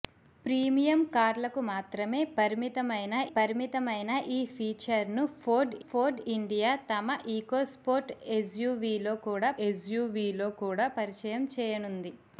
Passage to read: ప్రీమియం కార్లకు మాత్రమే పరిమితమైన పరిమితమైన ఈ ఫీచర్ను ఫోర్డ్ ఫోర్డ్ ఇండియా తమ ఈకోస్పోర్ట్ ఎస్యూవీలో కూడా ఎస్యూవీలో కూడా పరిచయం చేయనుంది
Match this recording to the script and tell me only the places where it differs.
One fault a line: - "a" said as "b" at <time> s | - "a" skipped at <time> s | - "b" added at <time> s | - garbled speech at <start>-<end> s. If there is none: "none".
none